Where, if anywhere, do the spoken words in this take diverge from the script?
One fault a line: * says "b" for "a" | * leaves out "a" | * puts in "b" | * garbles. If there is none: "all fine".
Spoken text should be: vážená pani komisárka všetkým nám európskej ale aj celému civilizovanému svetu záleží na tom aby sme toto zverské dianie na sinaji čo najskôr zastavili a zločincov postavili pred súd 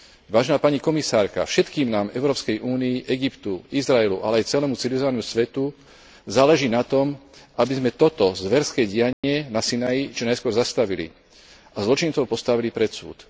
* puts in "únii egyptu izraelu"